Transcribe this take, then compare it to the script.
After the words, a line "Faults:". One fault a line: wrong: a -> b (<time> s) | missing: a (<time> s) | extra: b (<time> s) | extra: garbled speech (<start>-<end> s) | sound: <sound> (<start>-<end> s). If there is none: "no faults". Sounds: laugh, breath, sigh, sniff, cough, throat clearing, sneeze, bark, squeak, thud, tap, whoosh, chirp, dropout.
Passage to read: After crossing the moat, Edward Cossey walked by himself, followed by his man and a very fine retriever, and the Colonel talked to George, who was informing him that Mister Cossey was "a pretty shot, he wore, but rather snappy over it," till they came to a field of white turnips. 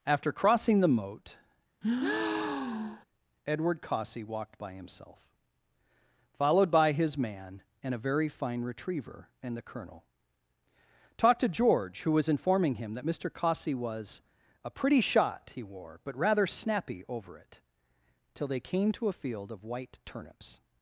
After crossing the moat, Edward Cossey walked by himself, followed by his man and a very fine retriever, and the Colonel talked to George, who was informing him that Mister Cossey was "a pretty shot, he wore, but rather snappy over it," till they came to a field of white turnips.
Faults:
sound: breath (1.8-3.1 s)